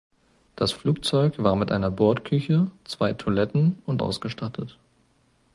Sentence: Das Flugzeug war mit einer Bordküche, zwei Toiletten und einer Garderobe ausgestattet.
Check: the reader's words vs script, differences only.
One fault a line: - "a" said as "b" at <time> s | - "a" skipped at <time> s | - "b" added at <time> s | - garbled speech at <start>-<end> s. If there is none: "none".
- "einer Garderobe" skipped at 4.0 s